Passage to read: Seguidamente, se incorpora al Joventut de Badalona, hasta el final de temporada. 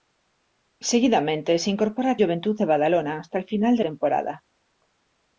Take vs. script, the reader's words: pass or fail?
pass